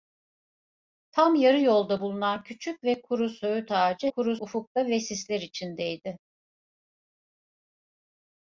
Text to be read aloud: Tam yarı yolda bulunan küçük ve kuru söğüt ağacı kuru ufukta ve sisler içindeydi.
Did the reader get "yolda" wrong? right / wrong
right